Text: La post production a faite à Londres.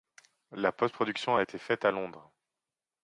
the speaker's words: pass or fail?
fail